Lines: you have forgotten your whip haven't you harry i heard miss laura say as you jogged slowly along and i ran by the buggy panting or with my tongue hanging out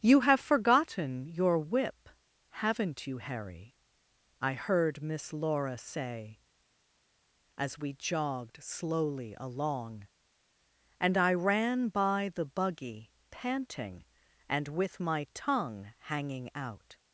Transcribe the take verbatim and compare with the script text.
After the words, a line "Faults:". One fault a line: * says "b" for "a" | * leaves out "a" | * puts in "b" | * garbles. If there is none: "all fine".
you have forgotten your whip haven't you harry i heard miss laura say as we jogged slowly along and i ran by the buggy panting and with my tongue hanging out
Faults:
* says "we" for "you"
* says "and" for "or"